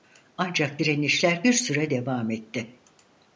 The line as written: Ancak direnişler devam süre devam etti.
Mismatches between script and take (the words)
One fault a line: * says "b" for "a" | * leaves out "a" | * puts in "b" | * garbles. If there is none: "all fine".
* says "bir" for "devam"